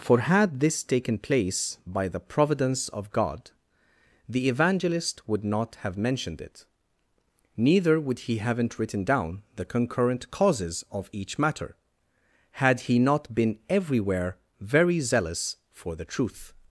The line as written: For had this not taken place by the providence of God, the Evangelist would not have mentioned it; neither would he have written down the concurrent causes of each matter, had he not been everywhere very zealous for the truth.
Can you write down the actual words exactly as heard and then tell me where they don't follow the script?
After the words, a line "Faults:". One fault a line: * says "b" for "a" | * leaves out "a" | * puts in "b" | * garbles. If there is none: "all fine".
For had this taken place by the providence of God, the Evangelist would not have mentioned it; neither would he haven't written down the concurrent causes of each matter, had he not been everywhere very zealous for the truth.
Faults:
* leaves out "not"
* says "haven't" for "have"